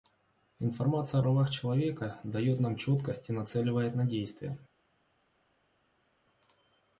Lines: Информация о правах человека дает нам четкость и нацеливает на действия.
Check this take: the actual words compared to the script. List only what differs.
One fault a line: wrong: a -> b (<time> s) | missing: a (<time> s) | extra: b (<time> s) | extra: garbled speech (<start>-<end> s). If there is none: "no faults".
no faults